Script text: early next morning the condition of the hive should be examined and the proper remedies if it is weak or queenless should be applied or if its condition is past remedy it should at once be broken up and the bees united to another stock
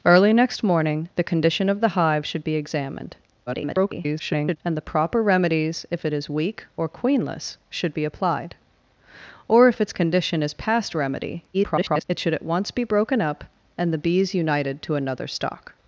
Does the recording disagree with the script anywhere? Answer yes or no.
yes